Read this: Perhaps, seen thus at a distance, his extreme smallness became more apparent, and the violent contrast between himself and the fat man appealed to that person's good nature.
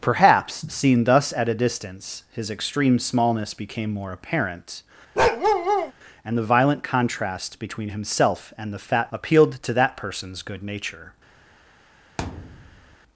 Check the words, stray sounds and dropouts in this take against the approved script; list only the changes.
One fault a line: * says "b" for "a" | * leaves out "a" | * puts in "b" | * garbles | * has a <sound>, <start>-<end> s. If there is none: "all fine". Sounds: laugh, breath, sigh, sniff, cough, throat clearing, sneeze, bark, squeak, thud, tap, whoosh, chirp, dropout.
* has a bark, 5.2-5.9 s
* leaves out "man"
* has a thud, 12.2-13.0 s